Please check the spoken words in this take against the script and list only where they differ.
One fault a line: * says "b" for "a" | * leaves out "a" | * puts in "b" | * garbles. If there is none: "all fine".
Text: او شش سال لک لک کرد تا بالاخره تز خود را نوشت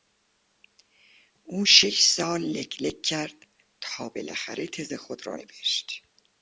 all fine